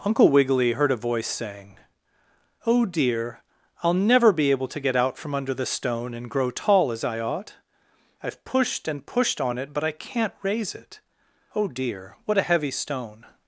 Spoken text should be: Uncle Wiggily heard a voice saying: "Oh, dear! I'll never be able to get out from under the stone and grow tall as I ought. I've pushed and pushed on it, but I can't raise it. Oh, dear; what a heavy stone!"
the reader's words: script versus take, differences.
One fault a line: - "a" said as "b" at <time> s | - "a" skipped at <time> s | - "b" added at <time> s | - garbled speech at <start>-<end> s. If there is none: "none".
none